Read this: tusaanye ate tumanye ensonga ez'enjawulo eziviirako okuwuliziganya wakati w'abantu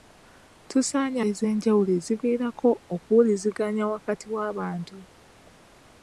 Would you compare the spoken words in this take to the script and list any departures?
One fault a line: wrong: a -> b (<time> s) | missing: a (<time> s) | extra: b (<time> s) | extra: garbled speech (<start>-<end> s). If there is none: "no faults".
missing: ate tumanye ensonga (1.2 s)